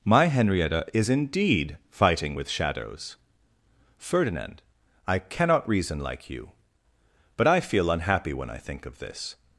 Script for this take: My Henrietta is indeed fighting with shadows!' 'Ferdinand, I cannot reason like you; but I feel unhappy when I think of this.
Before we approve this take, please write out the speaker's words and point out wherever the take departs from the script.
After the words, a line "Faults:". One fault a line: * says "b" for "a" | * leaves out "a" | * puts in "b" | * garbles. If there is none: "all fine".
My Henrietta is indeed fighting with shadows!' 'Ferdinand, I cannot reason like you; but I feel unhappy when I think of this.
Faults:
all fine